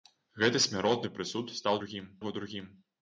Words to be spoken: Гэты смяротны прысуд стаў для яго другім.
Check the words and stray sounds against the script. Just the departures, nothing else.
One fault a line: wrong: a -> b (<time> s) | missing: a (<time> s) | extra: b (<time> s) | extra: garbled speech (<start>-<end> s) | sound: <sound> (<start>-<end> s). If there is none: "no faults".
wrong: для -> другім (1.8 s)